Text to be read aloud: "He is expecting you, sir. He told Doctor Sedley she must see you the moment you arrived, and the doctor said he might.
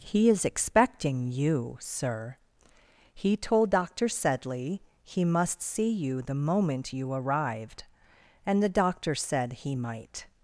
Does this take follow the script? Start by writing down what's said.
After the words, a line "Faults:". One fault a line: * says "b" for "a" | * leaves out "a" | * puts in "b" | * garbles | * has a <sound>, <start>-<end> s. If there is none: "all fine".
"He is expecting you, sir. He told Doctor Sedley he must see you the moment you arrived, and the doctor said he might.
Faults:
* says "he" for "she"